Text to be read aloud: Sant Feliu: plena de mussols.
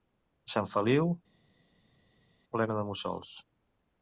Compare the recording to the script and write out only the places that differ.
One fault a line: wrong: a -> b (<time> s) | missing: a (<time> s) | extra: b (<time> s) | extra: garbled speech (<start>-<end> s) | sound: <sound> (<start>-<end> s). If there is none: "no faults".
no faults